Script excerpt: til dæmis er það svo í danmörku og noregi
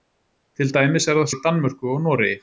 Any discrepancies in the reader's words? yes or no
yes